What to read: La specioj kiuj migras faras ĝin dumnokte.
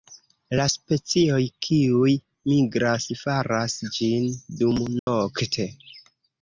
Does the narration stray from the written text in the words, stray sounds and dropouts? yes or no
yes